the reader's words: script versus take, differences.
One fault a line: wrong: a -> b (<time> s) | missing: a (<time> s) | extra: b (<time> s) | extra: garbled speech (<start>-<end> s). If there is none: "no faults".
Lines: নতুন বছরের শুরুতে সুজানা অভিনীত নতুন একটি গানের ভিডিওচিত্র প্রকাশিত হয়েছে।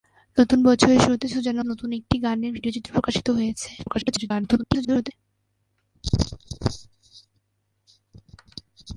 missing: অভিনীত (1.6 s)
extra: garbled speech (3.8-5.1 s)